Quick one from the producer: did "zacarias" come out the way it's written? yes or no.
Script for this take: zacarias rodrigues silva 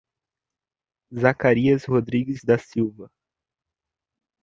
yes